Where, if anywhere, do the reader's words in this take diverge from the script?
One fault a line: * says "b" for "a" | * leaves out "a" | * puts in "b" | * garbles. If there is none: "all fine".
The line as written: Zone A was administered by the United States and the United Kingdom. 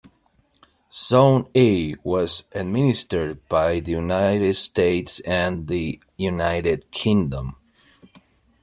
all fine